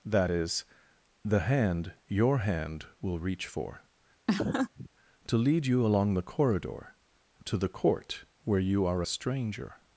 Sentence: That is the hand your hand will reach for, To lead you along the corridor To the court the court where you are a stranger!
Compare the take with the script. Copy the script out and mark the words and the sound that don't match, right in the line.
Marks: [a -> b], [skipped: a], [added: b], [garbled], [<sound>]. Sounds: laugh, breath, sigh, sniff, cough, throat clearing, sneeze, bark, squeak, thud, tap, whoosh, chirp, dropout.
That is the hand your hand will reach for, [laugh] To lead you along the corridor To the court [skipped: the court] where you are a stranger!